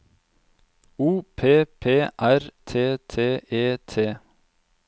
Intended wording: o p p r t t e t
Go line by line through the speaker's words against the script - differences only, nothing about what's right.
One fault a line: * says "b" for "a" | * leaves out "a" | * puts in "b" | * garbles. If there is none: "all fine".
all fine